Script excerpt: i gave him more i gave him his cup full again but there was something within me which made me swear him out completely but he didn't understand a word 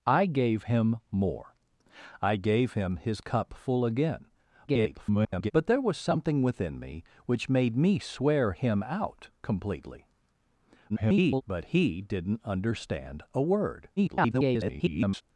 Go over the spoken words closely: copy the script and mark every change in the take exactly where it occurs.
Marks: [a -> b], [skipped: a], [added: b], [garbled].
i gave him more i gave him his cup full again [garbled] but there was something within me which made me swear him out completely [garbled] but he didn't understand a word [garbled]